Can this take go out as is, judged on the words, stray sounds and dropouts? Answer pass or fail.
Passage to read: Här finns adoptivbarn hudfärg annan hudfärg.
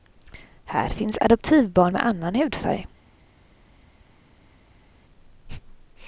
fail